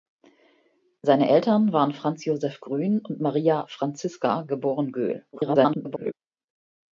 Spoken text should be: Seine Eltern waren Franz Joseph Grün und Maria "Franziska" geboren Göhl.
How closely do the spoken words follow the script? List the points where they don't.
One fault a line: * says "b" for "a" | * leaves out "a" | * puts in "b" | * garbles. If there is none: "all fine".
* garbles